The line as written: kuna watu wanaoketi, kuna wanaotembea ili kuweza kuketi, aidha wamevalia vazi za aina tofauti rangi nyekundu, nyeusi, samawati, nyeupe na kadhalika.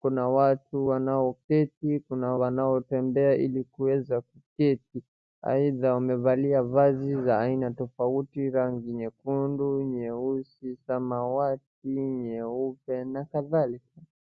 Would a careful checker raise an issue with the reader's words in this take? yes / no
no